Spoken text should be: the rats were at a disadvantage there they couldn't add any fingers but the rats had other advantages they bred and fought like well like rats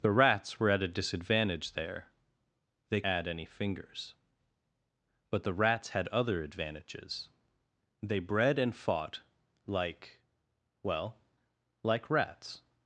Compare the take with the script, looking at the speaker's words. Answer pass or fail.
fail